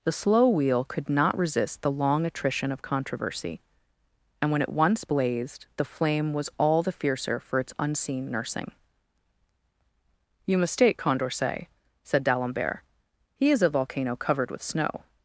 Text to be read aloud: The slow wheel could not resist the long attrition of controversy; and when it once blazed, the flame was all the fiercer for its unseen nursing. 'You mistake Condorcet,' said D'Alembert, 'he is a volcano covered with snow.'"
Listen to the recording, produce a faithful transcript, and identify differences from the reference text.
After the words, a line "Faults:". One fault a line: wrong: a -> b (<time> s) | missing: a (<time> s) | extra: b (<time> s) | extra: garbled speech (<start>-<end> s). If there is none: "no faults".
The slow wheel could not resist the long attrition of controversy; and when it once blazed, the flame was all the fiercer for its unseen nursing. 'You mistake Condorcet,' said D'Alembert, 'he is a volcano covered with snow.'"
Faults:
no faults